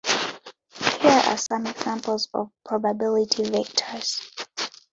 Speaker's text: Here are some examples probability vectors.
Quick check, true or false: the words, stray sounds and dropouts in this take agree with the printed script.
false